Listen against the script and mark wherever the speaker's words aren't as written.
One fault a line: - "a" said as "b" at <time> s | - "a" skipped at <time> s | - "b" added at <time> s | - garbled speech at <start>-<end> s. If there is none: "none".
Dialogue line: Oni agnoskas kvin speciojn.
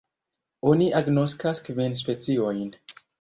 none